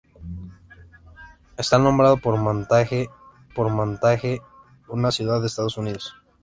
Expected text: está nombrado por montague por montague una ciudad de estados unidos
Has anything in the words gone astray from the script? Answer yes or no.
no